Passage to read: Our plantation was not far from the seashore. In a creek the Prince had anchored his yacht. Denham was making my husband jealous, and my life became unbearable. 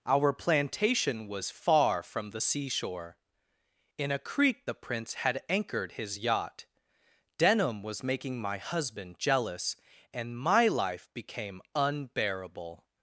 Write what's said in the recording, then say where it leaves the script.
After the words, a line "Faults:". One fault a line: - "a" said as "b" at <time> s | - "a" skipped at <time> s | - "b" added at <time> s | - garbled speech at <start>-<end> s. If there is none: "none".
Our plantation was far from the seashore. In a creek the Prince had anchored his yacht. Denham was making my husband jealous, and my life became unbearable.
Faults:
- "not" skipped at 1.5 s